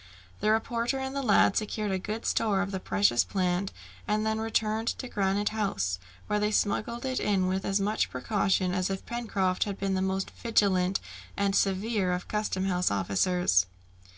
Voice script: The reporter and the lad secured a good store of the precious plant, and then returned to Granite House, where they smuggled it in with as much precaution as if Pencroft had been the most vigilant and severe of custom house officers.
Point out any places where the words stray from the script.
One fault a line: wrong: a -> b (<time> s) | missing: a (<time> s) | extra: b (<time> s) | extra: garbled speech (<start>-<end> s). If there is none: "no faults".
no faults